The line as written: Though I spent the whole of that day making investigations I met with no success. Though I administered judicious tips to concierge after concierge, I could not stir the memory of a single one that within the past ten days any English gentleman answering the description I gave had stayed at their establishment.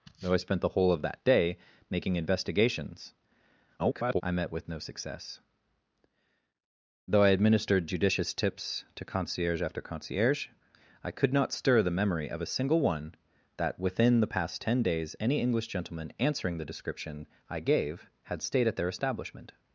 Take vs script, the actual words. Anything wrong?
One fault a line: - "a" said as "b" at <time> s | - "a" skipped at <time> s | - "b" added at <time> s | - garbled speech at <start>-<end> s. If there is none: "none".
- garbled speech at 3.8-4.2 s